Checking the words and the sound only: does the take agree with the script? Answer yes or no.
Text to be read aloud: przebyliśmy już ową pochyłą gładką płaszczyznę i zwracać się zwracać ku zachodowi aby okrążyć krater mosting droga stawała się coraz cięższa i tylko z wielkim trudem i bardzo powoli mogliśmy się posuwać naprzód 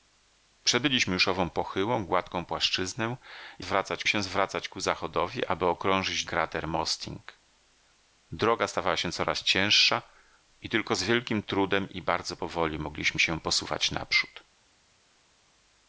yes